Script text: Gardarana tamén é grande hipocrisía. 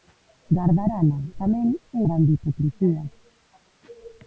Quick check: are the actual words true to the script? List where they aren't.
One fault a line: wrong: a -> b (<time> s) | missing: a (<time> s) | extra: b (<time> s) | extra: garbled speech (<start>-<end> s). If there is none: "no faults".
no faults